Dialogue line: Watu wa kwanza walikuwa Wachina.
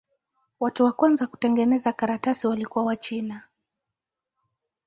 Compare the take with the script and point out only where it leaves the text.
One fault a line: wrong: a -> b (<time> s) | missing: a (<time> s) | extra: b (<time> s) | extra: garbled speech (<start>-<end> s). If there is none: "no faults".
extra: kutengeneza karatasi (1.3 s)